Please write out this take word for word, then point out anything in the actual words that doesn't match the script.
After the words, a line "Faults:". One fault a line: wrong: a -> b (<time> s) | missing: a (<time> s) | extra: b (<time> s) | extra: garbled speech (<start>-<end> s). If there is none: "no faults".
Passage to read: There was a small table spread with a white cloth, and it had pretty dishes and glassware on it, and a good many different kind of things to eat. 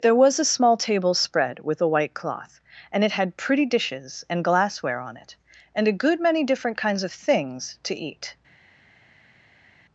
There was a small table spread with a white cloth, and it had pretty dishes and glassware on it, and a good many different kinds of things to eat.
Faults:
wrong: kind -> kinds (6.8 s)